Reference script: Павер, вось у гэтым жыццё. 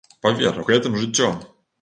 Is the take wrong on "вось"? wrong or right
wrong